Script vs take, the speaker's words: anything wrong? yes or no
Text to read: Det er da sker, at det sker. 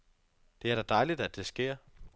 yes